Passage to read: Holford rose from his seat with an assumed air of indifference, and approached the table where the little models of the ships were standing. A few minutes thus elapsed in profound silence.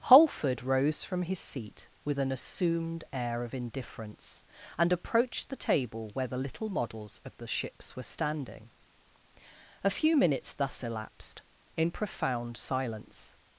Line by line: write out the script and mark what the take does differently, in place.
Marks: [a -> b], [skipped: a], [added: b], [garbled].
Holford rose from his seat with an assumed air of indifference, and approached the table where the little models of the ships were standing. A few minutes thus elapsed in profound silence.